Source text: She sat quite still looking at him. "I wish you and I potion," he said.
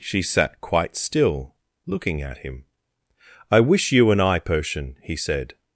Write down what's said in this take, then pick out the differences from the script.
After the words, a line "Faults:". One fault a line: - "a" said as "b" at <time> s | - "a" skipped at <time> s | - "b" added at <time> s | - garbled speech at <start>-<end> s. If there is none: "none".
She sat quite still looking at him. "I wish you and I potion," he said.
Faults:
none